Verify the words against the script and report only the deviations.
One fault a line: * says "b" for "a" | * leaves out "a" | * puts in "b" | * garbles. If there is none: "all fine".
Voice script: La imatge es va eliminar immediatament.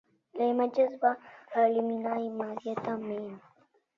all fine